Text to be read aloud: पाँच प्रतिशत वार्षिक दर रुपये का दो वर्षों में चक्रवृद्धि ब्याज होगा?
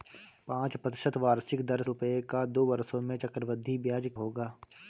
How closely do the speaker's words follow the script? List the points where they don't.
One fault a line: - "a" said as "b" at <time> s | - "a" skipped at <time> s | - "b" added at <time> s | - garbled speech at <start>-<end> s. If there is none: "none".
none